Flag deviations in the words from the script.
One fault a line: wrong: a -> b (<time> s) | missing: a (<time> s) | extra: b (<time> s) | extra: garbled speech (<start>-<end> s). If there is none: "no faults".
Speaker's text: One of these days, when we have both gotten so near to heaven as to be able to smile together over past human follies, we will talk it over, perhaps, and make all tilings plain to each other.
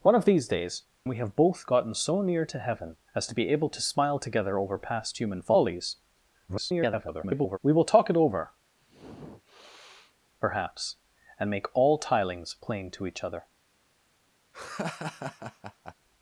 missing: when (0.8 s)
extra: garbled speech (6.5-7.6 s)